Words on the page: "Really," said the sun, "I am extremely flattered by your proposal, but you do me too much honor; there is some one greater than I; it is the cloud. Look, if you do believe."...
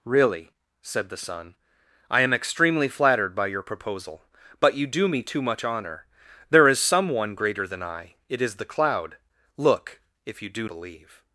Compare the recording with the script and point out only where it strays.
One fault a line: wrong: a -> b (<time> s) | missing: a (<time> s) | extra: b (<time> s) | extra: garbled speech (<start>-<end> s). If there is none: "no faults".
no faults